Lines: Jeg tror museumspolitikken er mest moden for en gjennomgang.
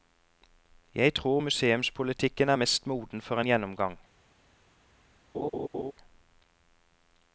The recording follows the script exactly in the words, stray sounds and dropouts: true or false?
false